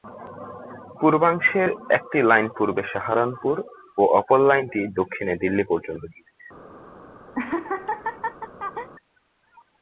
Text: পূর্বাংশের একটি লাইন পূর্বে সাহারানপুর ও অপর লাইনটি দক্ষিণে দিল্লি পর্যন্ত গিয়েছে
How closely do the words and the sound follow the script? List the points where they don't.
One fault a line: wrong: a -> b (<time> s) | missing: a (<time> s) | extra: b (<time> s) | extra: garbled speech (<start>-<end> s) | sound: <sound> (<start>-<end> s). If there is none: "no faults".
sound: laugh (7.3-8.9 s)